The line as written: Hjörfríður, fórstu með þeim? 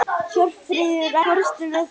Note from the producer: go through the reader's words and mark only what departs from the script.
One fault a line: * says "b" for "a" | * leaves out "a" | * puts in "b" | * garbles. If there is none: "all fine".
all fine